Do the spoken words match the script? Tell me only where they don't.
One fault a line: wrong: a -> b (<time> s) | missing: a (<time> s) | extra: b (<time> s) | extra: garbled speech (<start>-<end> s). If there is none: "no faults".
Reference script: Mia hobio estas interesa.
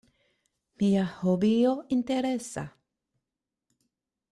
missing: estas (1.7 s)